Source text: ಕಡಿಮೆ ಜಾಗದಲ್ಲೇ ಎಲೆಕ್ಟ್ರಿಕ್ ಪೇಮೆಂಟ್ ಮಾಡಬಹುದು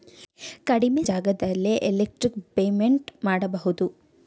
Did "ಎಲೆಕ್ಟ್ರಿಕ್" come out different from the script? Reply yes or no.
no